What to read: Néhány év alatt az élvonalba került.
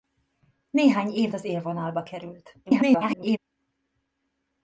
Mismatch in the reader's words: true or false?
true